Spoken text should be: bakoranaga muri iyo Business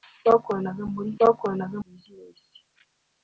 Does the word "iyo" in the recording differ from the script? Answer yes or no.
yes